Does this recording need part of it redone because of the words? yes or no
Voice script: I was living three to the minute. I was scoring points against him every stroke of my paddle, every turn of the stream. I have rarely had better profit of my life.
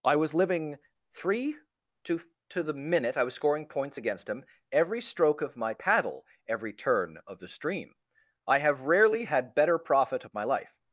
yes